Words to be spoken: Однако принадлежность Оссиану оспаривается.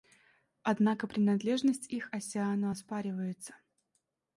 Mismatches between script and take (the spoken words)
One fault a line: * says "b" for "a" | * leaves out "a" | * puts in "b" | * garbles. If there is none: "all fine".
* puts in "их"